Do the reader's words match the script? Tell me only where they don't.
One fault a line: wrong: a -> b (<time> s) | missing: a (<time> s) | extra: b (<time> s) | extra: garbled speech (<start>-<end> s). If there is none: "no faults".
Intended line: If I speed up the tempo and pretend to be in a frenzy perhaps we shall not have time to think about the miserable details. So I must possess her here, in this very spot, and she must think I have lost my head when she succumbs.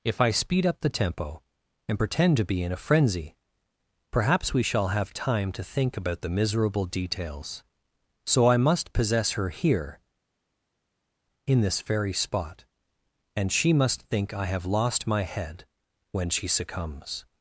missing: not (4.9 s)